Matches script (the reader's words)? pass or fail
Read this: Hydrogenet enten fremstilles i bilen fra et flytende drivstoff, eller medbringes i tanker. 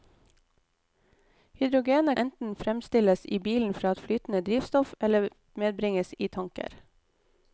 pass